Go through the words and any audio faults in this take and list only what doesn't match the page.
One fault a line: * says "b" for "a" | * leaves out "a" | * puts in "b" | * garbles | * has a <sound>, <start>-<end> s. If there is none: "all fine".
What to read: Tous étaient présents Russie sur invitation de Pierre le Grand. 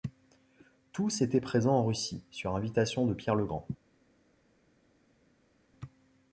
* puts in "en"